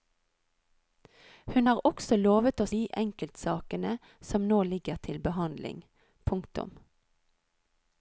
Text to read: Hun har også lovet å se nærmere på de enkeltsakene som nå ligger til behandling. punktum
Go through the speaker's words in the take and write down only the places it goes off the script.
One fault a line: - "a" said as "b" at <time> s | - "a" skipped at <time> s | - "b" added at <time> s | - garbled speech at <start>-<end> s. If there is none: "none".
- "se nærmere på" skipped at 2.7 s